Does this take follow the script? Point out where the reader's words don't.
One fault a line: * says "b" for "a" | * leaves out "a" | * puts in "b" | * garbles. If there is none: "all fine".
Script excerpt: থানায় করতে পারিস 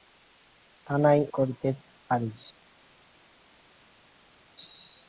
all fine